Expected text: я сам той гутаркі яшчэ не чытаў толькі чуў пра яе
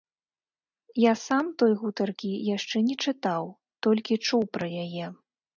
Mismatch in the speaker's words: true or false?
false